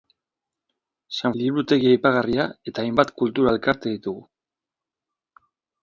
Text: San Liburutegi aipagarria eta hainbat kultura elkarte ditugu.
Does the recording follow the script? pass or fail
pass